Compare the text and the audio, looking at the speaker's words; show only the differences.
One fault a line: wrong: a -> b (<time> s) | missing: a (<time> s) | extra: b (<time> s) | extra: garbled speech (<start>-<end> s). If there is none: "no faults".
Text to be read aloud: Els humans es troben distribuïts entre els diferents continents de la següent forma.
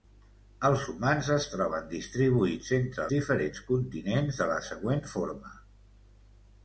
missing: els (3.0 s)